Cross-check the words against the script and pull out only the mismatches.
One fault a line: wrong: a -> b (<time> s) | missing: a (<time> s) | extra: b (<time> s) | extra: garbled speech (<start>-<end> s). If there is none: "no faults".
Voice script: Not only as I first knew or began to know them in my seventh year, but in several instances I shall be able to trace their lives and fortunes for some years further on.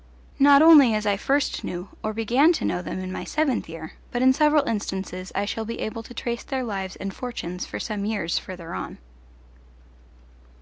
no faults